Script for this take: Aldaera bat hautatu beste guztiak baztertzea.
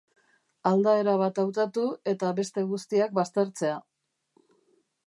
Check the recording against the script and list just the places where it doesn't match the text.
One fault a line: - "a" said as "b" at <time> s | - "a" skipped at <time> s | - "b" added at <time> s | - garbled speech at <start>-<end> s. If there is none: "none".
- "eta" added at 2.1 s